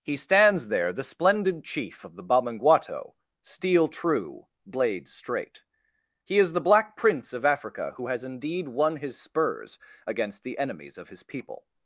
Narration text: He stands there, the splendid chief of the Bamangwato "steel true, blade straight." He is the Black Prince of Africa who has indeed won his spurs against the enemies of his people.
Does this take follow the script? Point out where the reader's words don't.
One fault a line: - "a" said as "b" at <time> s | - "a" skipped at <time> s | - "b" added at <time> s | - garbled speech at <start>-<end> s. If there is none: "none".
none